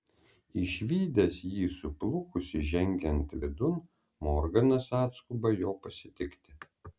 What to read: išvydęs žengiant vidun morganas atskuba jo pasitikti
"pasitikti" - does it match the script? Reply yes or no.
yes